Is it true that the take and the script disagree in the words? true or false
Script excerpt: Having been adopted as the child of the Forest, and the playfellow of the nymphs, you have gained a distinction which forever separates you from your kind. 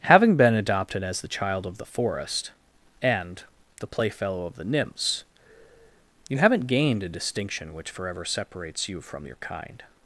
true